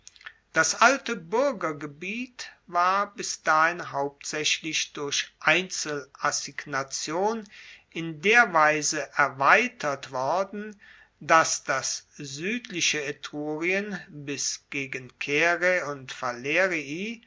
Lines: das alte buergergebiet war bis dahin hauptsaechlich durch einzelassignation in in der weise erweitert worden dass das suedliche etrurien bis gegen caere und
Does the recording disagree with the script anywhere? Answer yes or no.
yes